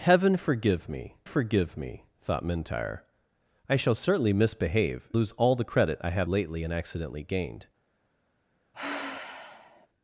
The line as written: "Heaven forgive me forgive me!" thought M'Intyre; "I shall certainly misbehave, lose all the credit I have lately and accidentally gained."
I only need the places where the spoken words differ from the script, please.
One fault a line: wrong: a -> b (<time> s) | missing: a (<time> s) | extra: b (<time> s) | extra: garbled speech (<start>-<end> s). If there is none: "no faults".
no faults